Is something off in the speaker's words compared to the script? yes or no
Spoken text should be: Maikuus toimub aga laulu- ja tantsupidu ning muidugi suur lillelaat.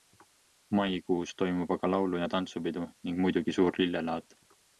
no